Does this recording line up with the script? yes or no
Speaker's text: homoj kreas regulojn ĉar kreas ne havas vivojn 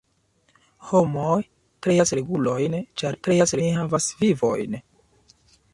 yes